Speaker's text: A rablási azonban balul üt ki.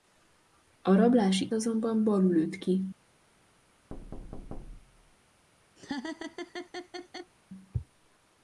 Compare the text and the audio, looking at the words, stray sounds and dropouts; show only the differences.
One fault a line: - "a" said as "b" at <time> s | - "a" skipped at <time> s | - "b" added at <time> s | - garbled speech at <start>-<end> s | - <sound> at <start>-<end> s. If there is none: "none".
- thud at 3.9-5.2 s
- laugh at 5.8-7.3 s